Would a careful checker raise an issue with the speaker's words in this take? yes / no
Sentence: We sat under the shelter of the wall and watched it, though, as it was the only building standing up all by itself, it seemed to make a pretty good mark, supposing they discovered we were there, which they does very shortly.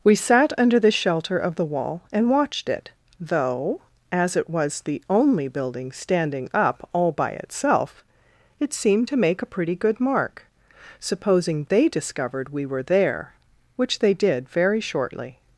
yes